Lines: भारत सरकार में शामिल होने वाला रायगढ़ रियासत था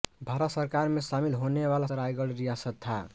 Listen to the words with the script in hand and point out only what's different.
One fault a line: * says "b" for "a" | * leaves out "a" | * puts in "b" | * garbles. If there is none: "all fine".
all fine